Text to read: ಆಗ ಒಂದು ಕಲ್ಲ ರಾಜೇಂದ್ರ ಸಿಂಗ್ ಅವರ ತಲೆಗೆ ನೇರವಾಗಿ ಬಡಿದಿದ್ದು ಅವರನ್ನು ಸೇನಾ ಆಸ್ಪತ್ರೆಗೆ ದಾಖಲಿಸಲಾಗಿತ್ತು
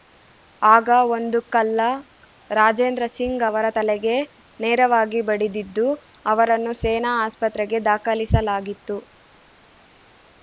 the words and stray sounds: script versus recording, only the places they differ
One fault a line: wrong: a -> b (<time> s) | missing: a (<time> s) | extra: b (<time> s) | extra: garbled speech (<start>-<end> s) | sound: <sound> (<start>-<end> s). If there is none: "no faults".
no faults